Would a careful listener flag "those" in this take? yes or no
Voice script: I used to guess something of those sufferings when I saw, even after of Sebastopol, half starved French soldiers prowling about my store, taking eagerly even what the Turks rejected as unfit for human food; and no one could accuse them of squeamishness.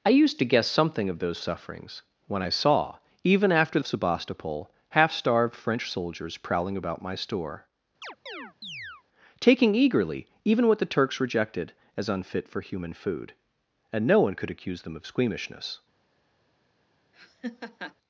no